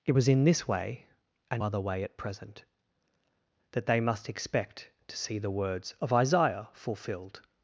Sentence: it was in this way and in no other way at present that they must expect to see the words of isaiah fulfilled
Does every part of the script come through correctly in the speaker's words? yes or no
no